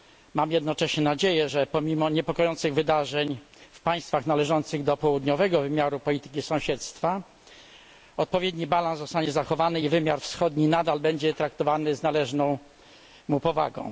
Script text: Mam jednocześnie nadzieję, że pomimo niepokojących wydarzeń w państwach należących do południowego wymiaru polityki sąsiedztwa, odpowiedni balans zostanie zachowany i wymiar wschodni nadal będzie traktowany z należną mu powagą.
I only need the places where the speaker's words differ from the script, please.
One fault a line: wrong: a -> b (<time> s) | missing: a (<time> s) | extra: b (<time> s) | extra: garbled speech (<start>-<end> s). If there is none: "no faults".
no faults